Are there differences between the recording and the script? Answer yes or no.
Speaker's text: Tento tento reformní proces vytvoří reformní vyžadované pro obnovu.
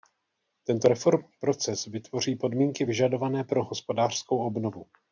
yes